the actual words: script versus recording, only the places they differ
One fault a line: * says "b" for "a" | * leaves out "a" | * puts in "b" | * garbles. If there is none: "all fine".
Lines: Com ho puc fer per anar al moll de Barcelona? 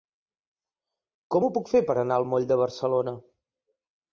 all fine